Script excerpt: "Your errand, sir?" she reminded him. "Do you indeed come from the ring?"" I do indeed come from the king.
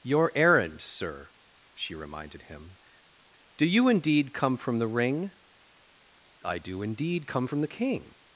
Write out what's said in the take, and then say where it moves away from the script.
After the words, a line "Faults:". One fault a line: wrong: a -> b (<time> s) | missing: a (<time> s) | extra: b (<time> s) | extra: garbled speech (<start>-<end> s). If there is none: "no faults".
"Your errand, sir?" she reminded him. "Do you indeed come from the ring?"" I do indeed come from the king.
Faults:
no faults